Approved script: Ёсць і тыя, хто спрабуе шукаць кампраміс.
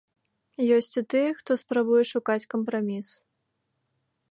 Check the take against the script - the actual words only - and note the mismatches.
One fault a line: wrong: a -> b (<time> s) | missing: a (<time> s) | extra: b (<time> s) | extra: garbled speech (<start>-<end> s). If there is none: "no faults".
no faults